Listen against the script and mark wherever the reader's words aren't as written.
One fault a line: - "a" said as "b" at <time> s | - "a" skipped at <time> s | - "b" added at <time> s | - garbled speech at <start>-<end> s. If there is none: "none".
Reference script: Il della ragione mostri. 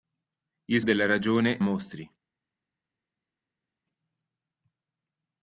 none